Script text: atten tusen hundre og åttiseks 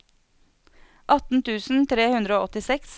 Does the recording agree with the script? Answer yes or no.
no